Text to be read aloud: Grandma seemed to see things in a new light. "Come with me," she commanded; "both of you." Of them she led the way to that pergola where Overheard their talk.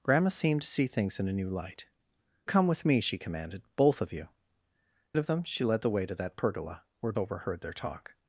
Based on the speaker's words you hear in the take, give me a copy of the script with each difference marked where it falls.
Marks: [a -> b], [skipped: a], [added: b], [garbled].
Grandma seemed to see things in a new light. "Come with me," she commanded; "both of you." Of them she led the way to that pergola where Overheard their talk.